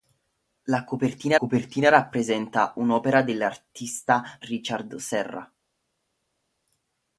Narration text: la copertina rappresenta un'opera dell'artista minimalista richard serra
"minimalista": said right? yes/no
no